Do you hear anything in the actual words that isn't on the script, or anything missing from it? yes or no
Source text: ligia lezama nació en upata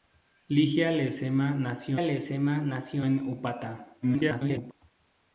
yes